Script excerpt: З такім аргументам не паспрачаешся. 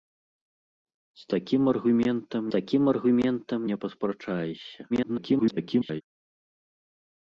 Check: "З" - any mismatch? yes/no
no